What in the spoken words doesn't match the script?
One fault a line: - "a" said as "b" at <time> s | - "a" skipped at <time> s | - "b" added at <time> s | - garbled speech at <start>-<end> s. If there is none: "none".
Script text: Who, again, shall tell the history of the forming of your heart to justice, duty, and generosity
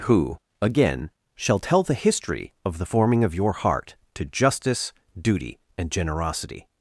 none